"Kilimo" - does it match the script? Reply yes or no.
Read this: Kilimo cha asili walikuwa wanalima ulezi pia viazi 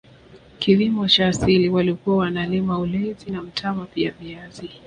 yes